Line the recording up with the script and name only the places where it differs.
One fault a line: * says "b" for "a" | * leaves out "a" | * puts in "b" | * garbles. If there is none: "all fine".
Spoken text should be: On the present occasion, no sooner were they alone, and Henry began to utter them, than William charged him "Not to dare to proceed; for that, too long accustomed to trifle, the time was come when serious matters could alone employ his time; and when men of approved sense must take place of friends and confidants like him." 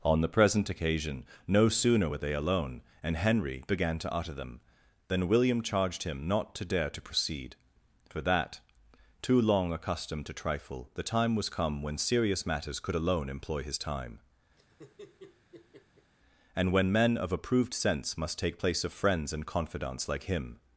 all fine